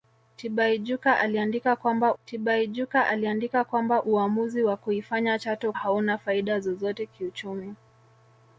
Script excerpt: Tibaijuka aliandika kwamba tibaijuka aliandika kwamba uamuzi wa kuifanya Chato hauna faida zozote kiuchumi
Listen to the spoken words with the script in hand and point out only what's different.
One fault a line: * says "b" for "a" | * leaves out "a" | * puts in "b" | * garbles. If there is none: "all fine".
all fine